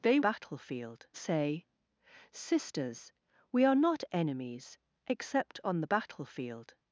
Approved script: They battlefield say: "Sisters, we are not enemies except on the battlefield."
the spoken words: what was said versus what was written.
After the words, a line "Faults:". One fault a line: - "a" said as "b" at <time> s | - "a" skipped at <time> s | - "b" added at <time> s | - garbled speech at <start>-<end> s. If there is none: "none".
They battlefield say: "Sisters, we are not enemies except on the battlefield."
Faults:
none